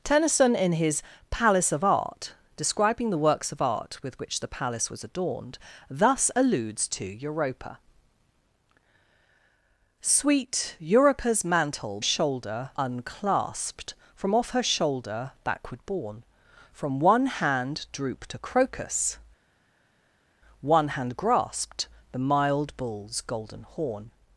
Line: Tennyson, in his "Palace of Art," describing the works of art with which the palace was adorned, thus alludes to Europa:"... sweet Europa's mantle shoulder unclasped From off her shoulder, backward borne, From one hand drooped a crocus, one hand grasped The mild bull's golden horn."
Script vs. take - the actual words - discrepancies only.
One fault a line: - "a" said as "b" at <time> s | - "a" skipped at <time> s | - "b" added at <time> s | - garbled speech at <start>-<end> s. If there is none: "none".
none